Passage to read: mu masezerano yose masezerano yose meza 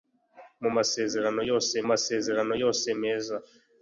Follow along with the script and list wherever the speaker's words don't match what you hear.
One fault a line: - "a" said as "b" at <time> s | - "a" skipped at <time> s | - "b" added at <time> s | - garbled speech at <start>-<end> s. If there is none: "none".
none